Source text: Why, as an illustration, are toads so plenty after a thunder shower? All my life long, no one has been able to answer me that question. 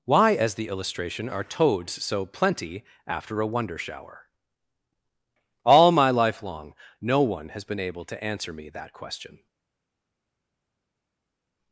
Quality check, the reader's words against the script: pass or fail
fail